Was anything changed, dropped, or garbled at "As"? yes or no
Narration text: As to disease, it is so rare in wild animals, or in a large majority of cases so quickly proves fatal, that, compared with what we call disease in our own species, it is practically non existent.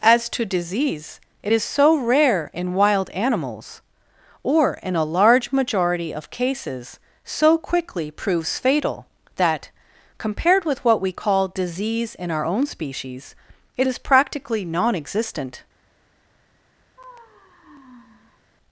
no